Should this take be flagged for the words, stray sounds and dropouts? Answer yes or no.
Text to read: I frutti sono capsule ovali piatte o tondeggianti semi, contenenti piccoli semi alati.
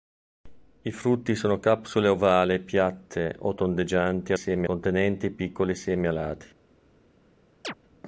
yes